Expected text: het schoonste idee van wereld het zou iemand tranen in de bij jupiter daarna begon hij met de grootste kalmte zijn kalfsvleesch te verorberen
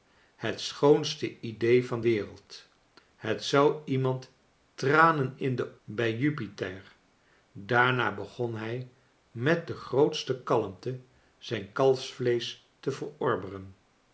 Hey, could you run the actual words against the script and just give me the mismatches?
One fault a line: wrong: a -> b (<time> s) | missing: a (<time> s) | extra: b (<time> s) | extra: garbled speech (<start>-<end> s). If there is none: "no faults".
no faults